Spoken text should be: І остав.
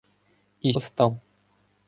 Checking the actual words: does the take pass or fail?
pass